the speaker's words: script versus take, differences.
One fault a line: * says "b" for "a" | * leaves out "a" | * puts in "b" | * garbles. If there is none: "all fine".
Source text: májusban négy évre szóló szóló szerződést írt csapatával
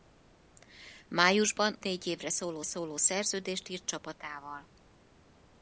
all fine